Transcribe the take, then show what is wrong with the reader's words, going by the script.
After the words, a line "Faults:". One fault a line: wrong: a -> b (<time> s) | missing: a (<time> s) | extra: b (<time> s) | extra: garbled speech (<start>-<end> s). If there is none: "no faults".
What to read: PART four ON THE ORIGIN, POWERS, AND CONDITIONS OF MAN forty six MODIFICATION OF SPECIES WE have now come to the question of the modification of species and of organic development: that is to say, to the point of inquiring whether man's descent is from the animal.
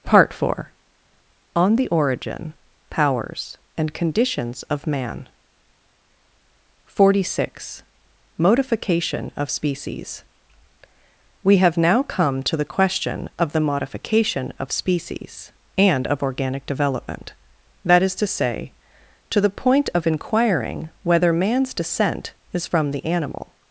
PART four ON THE ORIGIN, POWERS, AND CONDITIONS OF MAN forty six MODIFICATION OF SPECIES WE have now come to the question of the modification of species and of organic development: that is to say, to the point of inquiring whether man's descent is from the animal.
Faults:
no faults